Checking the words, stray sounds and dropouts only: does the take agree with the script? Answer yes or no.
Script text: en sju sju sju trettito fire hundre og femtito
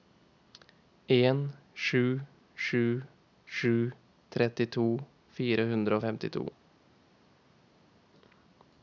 yes